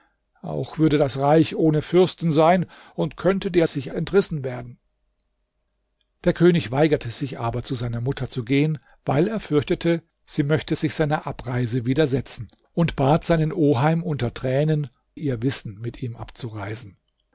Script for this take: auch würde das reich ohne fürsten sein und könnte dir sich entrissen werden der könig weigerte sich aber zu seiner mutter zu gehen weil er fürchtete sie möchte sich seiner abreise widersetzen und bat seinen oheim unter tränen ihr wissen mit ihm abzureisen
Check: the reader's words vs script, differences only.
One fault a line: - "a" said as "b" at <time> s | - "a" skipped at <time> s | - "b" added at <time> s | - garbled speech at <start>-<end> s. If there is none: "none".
none